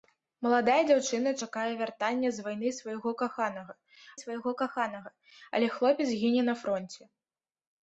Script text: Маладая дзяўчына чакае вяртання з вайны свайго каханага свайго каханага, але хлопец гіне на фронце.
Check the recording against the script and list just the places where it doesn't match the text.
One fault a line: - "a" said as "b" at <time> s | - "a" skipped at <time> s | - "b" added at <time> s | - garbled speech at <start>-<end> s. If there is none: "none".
none